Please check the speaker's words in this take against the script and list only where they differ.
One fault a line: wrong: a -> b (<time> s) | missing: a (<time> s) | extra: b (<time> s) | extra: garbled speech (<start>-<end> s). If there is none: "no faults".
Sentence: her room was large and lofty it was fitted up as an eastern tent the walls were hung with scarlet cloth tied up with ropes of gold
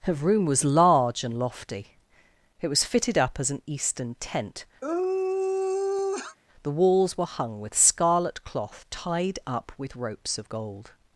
no faults